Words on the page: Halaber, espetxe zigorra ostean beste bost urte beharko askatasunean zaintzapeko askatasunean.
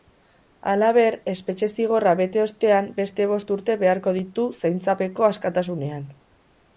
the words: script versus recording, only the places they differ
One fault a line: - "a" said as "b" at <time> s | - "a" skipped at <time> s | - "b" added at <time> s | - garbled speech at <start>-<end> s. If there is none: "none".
- "bete" added at 2.2 s
- "askatasunean" said as "ditu" at 4.2 s